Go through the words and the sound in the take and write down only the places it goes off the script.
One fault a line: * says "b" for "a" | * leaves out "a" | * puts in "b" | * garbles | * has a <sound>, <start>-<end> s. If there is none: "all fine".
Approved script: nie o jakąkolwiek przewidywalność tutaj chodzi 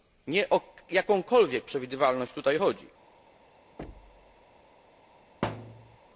* has a thud, 3.8-4.4 s
* has a thud, 5.4-6.0 s